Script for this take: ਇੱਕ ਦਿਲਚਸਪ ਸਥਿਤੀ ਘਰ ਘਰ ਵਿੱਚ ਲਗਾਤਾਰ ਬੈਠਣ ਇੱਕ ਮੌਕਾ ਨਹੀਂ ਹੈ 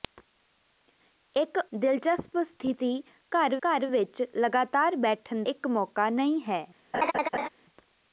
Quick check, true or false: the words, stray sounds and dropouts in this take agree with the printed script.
false